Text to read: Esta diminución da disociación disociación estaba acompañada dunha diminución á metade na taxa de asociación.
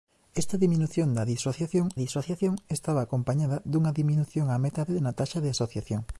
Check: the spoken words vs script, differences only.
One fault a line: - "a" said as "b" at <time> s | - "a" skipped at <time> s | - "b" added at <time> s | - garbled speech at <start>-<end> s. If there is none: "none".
none